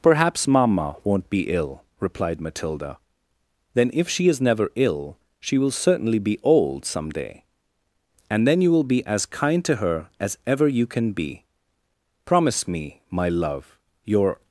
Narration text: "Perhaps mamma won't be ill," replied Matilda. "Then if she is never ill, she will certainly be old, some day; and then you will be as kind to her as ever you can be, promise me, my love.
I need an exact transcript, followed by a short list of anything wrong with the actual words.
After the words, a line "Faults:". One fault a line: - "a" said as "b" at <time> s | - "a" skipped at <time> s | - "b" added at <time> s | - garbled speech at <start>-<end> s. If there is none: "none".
"Perhaps mamma won't be ill," replied Matilda. "Then if she is never ill, she will certainly be old, some day; and then you will be as kind to her as ever you can be, promise me, my love. Your
Faults:
- "Your" added at 14.0 s